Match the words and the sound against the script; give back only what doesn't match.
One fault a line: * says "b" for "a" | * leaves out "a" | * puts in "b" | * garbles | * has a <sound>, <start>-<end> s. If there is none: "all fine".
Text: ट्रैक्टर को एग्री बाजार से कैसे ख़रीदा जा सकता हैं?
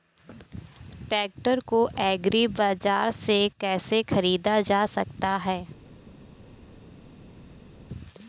all fine